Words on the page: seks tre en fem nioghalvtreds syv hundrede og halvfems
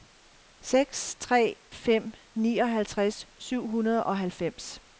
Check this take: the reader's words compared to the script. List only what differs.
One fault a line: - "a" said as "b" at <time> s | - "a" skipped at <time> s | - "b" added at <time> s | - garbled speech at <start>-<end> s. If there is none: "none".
- "en" skipped at 1.6 s